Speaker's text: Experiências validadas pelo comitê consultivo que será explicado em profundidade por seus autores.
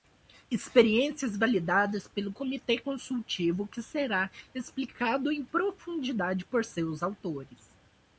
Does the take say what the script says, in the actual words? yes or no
yes